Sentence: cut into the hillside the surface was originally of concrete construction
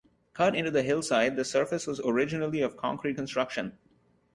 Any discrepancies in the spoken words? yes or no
no